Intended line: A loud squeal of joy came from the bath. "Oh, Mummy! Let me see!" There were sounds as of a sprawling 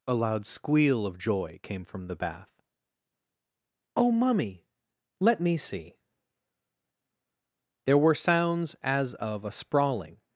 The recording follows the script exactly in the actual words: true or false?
true